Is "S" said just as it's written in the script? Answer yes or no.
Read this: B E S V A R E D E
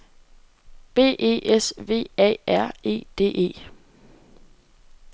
yes